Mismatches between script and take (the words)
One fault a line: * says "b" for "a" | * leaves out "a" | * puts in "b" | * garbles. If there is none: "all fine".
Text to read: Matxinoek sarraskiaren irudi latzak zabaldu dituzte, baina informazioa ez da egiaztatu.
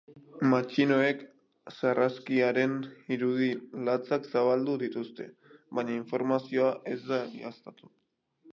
all fine